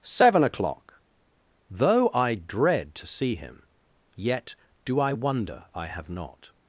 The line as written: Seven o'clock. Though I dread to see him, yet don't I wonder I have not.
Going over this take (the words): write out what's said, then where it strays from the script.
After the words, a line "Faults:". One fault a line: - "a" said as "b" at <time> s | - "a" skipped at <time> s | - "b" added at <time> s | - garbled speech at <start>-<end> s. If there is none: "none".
Seven o'clock. Though I dread to see him, yet do I wonder I have not.
Faults:
- "don't" said as "do" at 4.9 s